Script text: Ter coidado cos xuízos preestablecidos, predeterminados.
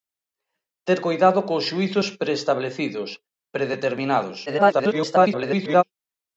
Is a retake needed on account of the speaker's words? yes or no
yes